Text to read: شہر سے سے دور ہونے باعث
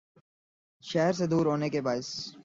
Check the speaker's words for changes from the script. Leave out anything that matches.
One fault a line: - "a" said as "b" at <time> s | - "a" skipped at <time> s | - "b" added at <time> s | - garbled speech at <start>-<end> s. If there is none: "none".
- "سے" skipped at 1.2 s
- "کے" added at 1.7 s